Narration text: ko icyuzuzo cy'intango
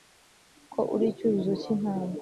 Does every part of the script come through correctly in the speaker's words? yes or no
no